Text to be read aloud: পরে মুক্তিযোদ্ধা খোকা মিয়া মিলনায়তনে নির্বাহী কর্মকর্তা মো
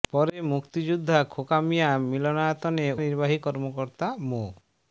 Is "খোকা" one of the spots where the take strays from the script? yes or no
no